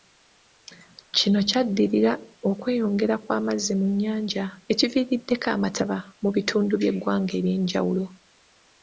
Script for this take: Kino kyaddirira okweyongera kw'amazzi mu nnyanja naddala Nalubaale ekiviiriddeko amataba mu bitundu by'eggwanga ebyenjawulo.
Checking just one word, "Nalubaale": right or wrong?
wrong